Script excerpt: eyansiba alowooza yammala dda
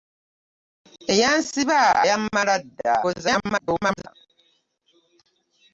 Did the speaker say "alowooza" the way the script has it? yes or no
no